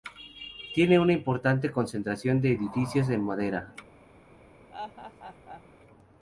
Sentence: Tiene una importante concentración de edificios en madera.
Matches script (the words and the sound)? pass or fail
fail